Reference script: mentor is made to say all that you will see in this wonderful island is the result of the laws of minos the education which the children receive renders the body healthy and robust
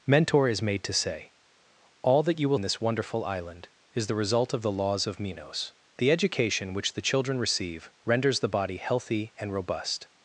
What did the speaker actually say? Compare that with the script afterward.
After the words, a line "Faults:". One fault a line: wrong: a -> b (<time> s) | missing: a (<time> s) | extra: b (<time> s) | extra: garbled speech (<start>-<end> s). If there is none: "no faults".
mentor is made to say all that you will in this wonderful island is the result of the laws of minos the education which the children receive renders the body healthy and robust
Faults:
missing: see (2.6 s)